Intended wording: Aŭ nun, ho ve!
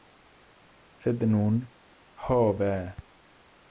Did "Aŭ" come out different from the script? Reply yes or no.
yes